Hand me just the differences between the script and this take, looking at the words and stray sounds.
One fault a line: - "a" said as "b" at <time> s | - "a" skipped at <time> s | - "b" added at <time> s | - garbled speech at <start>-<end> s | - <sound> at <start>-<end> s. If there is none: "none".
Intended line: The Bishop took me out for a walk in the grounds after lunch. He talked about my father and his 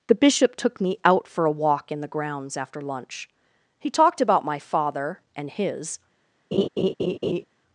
- laugh at 6.5-7.4 s